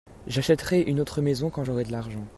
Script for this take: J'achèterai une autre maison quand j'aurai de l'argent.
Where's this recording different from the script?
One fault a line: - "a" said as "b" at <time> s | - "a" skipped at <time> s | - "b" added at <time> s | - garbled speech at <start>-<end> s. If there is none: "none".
none